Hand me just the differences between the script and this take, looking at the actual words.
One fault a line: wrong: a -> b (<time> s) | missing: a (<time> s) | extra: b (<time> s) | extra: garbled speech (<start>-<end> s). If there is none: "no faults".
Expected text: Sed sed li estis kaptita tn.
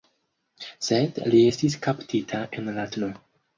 missing: sed (1.2 s)
extra: en la (2.6 s)